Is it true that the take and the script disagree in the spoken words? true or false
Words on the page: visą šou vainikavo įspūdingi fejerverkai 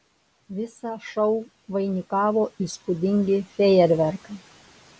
false